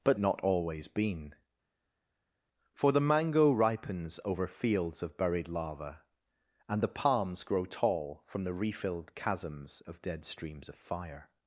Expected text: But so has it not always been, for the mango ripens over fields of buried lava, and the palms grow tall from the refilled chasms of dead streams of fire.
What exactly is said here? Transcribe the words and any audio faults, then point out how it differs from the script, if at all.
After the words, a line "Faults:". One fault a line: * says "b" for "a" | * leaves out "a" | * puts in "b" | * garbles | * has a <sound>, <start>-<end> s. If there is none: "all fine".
But not always been, for the mango ripens over fields of buried lava, and the palms grow tall from the refilled chasms of dead streams of fire.
Faults:
* leaves out "so has it"